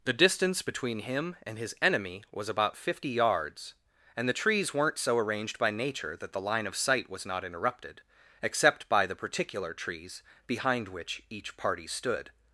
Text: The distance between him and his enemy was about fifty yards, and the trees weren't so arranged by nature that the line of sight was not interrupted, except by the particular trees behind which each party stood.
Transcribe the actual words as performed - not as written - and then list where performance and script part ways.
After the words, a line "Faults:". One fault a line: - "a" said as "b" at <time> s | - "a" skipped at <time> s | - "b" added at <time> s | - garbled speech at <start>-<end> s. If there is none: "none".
The distance between him and his enemy was about fifty yards, and the trees weren't so arranged by nature that the line of sight was not interrupted, except by the particular trees behind which each party stood.
Faults:
none